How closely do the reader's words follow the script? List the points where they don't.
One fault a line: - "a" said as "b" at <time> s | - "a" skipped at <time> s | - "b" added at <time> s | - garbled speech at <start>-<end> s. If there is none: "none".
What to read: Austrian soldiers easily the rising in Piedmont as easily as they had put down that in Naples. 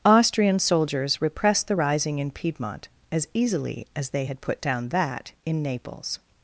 - "easily" said as "repressed" at 1.2 s